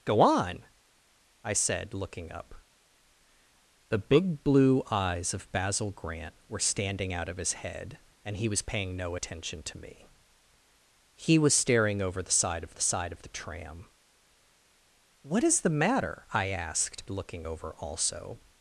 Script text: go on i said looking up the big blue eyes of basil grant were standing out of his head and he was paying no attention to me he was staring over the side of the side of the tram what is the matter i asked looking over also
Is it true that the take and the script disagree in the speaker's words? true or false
false